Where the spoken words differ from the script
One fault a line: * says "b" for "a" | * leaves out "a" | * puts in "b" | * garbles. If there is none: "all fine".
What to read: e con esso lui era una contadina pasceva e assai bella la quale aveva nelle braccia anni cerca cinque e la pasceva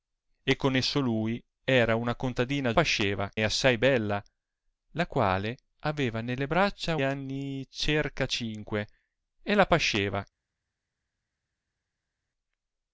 all fine